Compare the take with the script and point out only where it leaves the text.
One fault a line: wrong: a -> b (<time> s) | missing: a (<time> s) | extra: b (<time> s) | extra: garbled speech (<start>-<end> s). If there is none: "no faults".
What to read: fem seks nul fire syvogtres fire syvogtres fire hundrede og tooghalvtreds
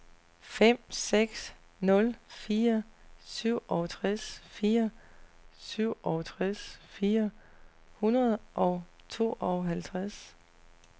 no faults